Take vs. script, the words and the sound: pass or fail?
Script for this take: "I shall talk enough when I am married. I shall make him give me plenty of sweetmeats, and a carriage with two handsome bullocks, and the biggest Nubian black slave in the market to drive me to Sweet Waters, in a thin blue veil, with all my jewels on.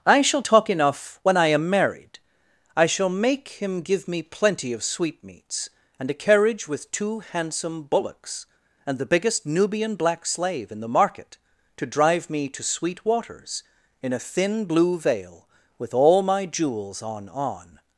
fail